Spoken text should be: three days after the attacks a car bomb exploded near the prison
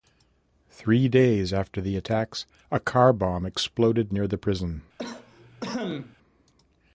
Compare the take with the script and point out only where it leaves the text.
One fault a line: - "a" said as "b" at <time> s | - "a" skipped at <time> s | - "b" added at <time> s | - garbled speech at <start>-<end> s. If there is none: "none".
none